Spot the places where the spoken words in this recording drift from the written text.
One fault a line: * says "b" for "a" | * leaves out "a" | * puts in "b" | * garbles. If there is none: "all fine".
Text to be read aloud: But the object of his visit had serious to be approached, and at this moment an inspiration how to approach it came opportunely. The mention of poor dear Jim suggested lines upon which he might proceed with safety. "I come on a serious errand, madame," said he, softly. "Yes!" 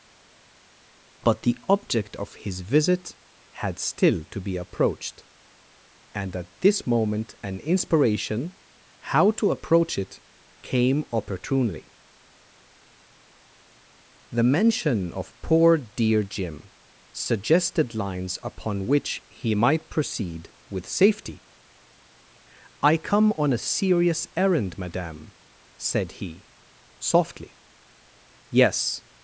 * says "still" for "serious"